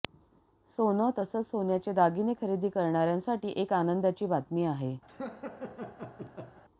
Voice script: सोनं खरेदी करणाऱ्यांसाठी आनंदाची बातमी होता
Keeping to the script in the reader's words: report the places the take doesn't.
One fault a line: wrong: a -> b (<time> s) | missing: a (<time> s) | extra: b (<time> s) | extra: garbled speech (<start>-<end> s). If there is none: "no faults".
extra: तसंच सोन्याचे दागिने (1.2 s)
extra: एक (3.6 s)
wrong: होता -> आहे (4.7 s)